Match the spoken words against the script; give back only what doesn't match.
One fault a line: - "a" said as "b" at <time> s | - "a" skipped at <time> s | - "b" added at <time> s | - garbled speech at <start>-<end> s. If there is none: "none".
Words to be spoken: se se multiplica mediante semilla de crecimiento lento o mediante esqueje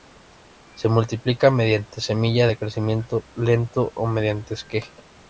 - "se" skipped at 0.9 s